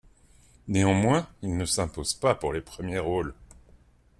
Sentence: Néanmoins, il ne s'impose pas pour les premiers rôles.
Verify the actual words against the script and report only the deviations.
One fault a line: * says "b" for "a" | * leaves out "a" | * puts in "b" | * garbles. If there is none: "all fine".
all fine